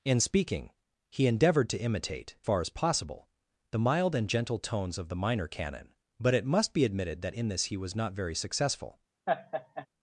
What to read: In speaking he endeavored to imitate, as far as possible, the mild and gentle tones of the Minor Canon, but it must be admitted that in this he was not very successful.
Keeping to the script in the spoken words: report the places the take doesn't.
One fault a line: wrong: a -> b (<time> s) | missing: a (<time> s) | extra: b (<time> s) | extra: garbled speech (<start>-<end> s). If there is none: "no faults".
missing: as (2.4 s)